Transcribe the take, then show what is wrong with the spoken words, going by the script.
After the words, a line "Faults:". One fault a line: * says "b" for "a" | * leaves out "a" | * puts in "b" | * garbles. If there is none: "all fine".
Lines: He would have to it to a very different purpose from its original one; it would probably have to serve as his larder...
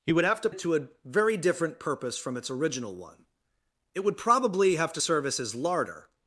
He would have to it to a very different purpose from its original one; it would probably have to serve as his larder...
Faults:
all fine